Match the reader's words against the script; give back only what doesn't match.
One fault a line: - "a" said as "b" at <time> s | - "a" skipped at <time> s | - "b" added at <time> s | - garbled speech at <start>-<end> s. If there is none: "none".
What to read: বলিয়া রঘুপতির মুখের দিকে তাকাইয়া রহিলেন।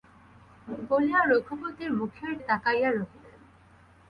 - "দিকে" skipped at 2.3 s